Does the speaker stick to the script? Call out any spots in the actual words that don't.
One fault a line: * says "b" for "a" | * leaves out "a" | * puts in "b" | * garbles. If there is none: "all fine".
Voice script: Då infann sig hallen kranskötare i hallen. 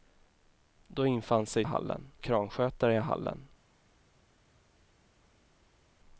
all fine